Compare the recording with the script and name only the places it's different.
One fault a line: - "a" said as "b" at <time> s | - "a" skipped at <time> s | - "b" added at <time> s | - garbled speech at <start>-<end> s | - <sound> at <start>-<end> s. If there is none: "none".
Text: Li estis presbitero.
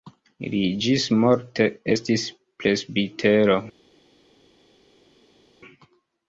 - "ĝismorte" added at 0.8 s